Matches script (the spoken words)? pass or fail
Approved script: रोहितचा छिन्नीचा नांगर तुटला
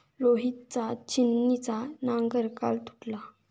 fail